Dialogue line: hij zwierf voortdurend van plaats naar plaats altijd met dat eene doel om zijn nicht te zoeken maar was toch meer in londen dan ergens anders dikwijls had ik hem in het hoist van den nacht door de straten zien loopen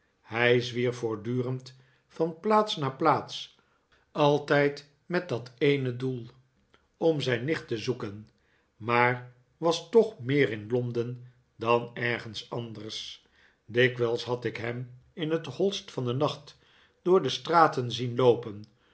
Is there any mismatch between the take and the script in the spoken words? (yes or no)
no